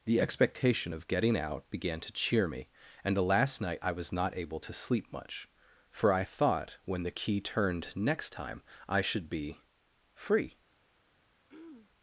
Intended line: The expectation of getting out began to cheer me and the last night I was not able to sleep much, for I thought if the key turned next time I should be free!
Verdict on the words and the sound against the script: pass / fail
fail